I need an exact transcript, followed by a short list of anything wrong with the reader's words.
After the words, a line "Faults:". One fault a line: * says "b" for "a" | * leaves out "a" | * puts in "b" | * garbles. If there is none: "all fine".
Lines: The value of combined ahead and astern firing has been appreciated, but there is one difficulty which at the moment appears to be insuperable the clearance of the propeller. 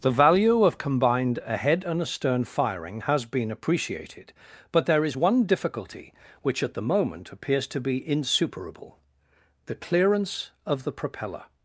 The value of combined ahead and astern firing has been appreciated, but there is one difficulty which at the moment appears to be insuperable the clearance of the propeller.
Faults:
all fine